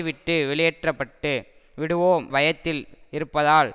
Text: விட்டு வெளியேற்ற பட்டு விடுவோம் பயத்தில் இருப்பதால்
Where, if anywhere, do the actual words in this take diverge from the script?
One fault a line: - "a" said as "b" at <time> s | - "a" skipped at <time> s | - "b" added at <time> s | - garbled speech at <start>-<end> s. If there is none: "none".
none